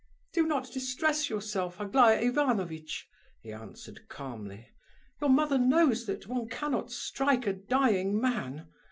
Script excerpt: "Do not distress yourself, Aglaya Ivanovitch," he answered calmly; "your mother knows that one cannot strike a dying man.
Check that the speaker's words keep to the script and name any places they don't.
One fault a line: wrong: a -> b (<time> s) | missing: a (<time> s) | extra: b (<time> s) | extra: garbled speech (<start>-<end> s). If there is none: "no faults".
no faults